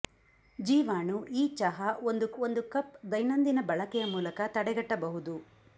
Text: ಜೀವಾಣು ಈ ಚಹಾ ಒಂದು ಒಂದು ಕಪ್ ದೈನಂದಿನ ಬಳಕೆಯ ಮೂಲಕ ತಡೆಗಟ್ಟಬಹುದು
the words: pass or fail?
pass